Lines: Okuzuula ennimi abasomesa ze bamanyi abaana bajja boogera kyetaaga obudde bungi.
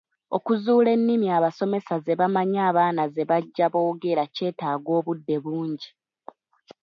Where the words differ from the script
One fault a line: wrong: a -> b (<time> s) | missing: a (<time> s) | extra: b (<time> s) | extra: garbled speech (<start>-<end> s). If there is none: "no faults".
extra: ze (3.1 s)